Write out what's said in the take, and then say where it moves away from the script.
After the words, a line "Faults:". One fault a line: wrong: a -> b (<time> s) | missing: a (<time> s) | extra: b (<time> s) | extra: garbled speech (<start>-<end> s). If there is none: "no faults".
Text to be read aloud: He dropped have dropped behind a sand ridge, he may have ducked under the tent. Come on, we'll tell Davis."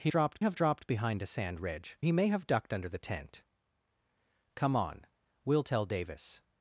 He dropped have dropped behind a sand ridge, he may have ducked under the tent. Come on, we'll tell Davis."
Faults:
no faults